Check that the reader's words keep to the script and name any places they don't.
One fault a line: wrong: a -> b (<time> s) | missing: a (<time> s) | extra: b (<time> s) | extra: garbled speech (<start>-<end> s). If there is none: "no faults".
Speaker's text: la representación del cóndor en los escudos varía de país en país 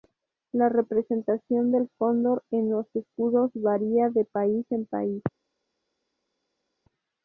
no faults